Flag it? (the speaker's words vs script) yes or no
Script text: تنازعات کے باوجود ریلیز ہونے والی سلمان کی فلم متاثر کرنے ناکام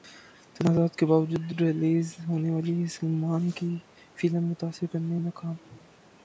no